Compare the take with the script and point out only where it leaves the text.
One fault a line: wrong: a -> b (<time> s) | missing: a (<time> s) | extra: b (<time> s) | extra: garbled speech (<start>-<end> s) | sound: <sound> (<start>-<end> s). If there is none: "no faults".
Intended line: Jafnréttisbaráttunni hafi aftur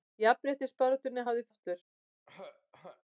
sound: throat clearing (2.3-3.0 s)